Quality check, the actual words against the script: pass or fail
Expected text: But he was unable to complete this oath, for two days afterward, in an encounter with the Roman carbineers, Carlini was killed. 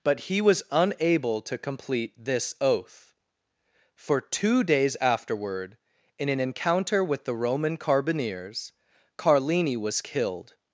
pass